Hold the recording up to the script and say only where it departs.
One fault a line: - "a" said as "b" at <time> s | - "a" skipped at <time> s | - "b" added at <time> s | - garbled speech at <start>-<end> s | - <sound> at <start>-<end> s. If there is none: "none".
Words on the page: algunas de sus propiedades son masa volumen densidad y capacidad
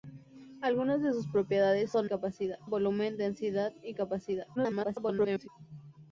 - "masa" said as "capacidad" at 2.1 s
- garbled speech at 4.6-5.5 s